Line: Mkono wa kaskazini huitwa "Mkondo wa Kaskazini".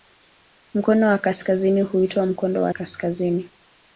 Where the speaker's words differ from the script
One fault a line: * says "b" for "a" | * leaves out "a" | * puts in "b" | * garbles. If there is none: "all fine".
all fine